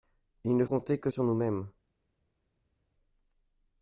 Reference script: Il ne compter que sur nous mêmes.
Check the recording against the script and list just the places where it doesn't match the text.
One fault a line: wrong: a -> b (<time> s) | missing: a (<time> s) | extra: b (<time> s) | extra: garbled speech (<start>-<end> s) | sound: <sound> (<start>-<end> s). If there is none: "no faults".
no faults